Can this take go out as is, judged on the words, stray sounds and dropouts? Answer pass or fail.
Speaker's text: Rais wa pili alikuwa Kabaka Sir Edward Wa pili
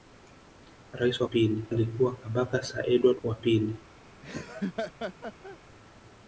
fail